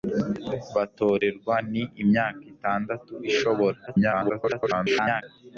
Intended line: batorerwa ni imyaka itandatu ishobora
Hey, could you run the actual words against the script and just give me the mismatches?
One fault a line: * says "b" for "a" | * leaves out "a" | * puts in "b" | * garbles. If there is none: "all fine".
* garbles